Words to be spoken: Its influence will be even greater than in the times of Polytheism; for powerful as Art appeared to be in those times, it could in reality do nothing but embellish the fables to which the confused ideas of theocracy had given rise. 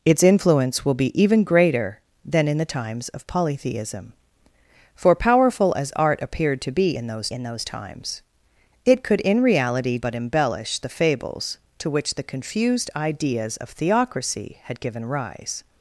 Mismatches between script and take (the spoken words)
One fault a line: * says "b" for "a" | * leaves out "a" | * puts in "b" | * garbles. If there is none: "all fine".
* puts in "in those"
* leaves out "do nothing"